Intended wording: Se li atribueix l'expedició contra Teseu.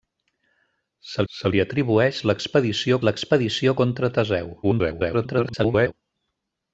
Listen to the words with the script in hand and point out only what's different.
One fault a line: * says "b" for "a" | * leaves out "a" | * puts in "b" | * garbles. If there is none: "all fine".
* puts in "se"
* puts in "l'expedició"
* garbles